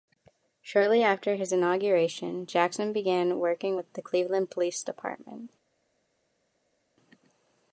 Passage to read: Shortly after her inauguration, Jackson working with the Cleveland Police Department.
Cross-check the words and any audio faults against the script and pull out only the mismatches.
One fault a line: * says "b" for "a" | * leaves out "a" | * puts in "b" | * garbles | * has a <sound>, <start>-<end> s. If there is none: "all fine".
* says "his" for "her"
* puts in "began"